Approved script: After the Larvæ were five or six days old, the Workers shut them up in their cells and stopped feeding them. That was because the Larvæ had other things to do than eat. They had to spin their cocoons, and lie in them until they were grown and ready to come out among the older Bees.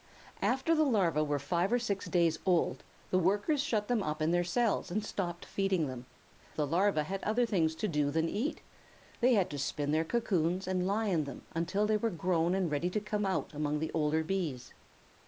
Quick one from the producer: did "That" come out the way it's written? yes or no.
no